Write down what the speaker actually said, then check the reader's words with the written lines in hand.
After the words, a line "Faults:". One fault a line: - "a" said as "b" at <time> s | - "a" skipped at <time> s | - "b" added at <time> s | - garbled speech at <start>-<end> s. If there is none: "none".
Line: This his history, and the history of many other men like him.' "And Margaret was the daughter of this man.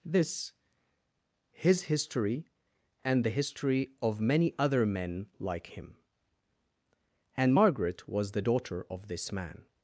This his history, and the history of many other men like him.' "And Margaret was the daughter of this man.
Faults:
none